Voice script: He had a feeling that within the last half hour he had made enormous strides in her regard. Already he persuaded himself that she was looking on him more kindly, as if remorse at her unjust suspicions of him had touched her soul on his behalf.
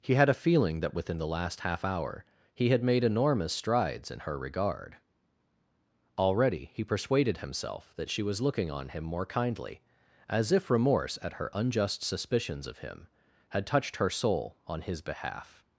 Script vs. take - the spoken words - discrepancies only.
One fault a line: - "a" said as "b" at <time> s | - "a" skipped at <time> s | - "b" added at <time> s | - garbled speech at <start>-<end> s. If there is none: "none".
none